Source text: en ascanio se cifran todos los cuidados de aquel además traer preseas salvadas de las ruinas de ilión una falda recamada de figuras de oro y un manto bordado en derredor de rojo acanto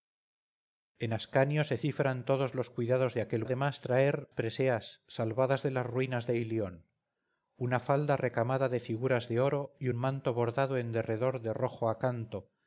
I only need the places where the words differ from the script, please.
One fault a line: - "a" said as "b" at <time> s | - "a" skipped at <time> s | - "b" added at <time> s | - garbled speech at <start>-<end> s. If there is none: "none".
none